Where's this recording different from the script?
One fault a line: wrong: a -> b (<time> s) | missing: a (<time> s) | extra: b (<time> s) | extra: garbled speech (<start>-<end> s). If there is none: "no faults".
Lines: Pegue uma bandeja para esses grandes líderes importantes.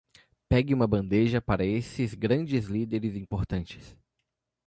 no faults